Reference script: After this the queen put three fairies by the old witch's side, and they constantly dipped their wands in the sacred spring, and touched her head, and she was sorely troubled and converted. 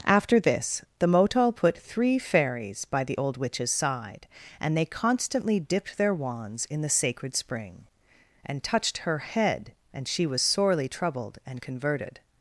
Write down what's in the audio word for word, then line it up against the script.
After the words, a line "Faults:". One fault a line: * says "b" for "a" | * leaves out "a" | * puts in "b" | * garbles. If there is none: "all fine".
After this the motal put three fairies by the old witch's side, and they constantly dipped their wands in the sacred spring, and touched her head, and she was sorely troubled and converted.
Faults:
* says "motal" for "queen"